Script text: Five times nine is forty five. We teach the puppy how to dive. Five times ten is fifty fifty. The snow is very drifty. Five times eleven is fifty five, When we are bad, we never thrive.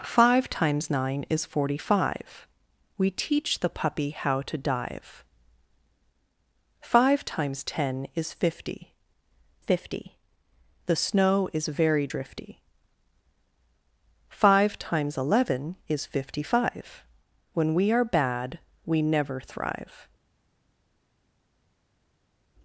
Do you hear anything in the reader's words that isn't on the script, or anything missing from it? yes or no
no